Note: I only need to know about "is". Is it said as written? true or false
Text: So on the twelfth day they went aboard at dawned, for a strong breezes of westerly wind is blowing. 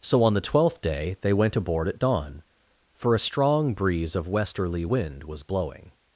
false